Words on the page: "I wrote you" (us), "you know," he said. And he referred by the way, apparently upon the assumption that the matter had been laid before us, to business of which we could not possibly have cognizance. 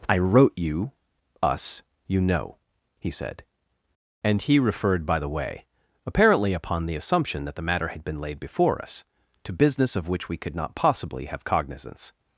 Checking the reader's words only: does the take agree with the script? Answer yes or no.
yes